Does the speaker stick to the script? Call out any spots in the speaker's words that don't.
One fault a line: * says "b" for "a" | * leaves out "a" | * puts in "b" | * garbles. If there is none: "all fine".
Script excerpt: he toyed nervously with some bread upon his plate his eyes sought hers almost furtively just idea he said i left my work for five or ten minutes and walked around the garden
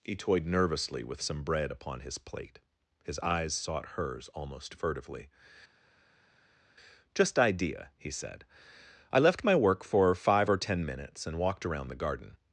all fine